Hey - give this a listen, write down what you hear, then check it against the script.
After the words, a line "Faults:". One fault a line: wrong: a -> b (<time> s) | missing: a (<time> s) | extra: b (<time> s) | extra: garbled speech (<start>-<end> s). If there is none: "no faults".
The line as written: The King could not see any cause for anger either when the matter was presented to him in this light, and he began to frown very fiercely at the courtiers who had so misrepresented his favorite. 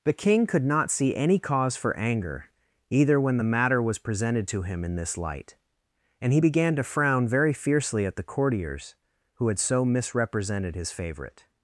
The King could not see any cause for anger either when the matter was presented to him in this light, and he began to frown very fiercely at the courtiers who had so misrepresented his favorite.
Faults:
no faults